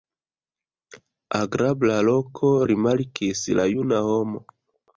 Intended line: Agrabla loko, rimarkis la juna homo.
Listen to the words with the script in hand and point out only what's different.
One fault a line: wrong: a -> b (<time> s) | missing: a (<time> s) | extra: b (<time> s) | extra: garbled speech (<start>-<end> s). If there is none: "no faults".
no faults